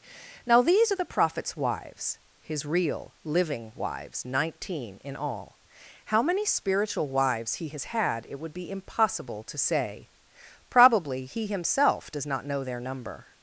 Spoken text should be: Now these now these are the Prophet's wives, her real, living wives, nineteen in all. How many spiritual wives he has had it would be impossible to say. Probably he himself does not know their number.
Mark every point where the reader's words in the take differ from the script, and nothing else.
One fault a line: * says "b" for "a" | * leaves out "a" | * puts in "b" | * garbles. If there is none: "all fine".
* leaves out "now these"
* says "his" for "her"